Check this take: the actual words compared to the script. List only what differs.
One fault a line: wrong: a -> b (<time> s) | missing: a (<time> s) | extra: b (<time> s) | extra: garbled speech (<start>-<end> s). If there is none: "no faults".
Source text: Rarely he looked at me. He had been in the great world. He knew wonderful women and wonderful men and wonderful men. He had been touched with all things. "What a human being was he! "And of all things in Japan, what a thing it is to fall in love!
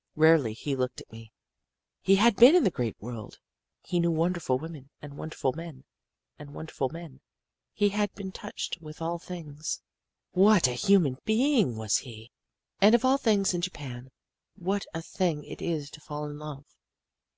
no faults